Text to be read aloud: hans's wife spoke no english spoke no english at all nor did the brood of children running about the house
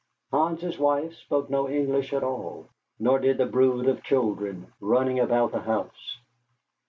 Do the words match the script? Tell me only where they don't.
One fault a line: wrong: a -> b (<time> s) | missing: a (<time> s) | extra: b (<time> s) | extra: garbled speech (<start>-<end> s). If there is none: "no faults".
missing: spoke no english (2.1 s)